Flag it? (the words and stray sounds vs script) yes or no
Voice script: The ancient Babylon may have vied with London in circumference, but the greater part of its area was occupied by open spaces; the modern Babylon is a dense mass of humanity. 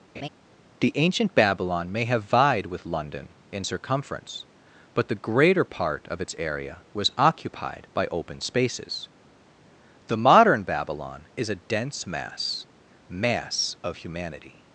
yes